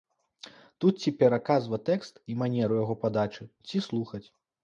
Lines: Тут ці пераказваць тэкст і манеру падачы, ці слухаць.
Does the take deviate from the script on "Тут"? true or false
false